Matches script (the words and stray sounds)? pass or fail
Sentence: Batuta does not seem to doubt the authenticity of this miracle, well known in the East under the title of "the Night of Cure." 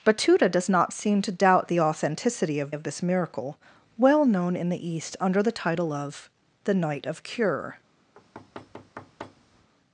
fail